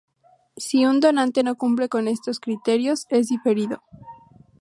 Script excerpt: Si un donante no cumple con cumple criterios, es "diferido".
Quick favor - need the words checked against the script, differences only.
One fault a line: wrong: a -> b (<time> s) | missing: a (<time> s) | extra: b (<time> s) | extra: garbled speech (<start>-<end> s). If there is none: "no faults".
wrong: cumple -> estos (2.1 s)